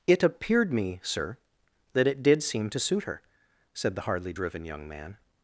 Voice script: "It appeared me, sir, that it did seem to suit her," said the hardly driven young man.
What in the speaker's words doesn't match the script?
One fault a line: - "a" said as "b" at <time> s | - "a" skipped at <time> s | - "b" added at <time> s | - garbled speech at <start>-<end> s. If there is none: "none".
none